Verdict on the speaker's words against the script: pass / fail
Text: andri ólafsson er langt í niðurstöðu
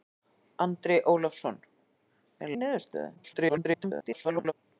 fail